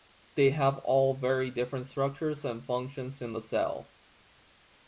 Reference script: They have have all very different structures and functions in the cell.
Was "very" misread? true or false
false